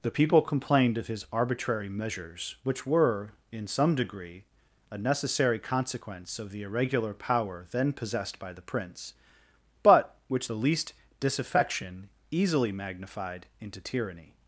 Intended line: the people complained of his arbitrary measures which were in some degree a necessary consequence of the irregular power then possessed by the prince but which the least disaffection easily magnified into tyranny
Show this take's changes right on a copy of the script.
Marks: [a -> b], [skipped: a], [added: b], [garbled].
the people complained of his arbitrary measures which were in some degree a necessary consequence of the irregular power then possessed by the prince but which the least disaffection easily magnified into tyranny